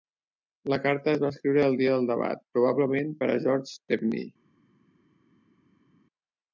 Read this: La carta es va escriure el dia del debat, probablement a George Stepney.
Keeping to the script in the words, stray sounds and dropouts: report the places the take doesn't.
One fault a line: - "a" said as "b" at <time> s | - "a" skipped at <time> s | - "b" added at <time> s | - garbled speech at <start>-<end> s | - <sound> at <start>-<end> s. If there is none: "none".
- "per" added at 3.2 s